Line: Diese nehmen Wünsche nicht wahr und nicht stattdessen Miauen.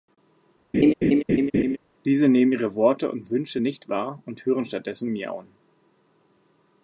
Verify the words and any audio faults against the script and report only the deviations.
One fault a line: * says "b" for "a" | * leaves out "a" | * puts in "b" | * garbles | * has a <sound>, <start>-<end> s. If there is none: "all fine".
* has a laugh, 0.7-1.8 s
* puts in "ihre Worte und"
* says "hören" for "nicht"